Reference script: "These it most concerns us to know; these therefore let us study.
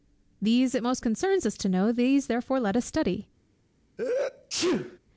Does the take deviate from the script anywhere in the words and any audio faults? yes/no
yes